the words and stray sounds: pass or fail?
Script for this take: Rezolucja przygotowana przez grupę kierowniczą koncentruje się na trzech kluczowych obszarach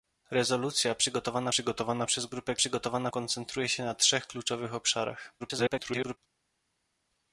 fail